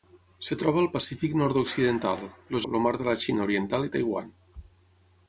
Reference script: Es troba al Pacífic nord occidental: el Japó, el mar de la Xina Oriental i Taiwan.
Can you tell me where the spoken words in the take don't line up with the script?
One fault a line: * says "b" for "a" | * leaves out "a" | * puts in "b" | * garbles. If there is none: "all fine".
* leaves out "Japó"